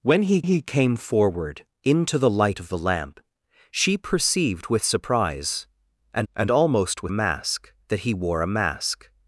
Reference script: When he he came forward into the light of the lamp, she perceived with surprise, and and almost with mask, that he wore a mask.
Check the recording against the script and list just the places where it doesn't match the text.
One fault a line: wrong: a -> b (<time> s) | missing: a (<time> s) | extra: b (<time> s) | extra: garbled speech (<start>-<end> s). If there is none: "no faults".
no faults